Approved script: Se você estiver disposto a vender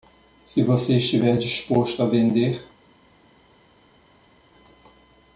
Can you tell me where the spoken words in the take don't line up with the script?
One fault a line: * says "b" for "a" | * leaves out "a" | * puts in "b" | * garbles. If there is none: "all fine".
all fine